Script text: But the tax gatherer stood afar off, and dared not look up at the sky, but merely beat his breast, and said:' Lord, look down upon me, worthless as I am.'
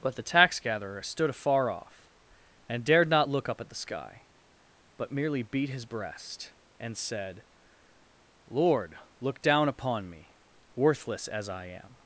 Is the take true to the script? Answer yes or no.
yes